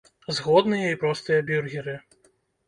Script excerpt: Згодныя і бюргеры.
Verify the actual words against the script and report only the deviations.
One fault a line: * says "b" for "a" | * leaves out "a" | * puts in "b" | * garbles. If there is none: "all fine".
* puts in "простыя"